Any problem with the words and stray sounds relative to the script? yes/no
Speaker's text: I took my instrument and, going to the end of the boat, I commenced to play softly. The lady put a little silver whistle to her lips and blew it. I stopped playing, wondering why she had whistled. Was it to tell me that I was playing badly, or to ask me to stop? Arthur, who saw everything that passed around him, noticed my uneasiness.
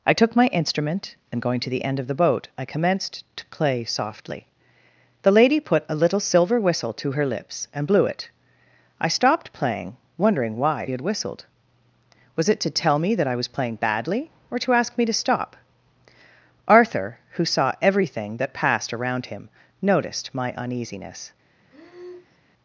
yes